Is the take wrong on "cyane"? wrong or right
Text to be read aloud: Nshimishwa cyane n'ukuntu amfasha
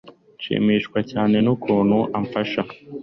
right